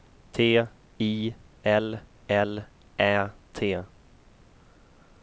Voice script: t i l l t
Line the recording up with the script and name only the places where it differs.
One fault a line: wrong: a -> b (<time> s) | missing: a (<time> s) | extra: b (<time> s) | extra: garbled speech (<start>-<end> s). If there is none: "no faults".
extra: ä (3.0 s)